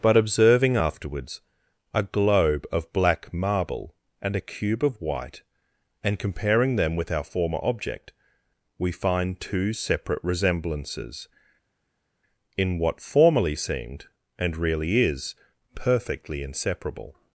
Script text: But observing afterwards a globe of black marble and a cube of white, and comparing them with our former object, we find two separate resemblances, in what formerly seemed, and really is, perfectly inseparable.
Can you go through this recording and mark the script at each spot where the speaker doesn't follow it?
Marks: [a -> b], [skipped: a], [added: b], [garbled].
But observing afterwards a globe of black marble and a cube of white, and comparing them with our former object, we find two separate resemblances, in what formerly seemed, and really is, perfectly inseparable.